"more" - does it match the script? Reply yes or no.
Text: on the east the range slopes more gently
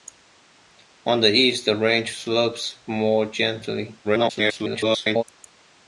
yes